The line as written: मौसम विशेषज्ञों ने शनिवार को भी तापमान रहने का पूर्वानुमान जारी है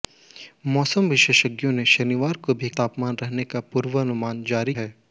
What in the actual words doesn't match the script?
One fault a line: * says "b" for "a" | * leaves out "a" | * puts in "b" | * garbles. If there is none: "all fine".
all fine